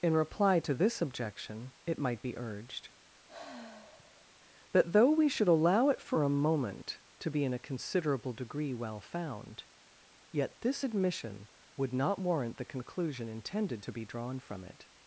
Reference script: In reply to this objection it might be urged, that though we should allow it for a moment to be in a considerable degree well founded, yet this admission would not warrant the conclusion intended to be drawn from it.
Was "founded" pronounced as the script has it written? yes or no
no